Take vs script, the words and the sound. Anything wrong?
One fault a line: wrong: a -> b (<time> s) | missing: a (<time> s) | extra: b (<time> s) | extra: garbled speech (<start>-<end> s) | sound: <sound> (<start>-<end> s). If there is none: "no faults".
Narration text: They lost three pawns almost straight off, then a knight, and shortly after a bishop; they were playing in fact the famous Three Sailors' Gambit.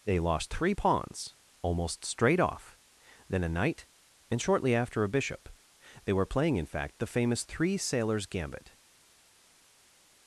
no faults